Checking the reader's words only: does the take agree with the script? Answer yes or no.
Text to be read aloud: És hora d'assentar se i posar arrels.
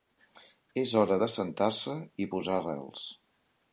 yes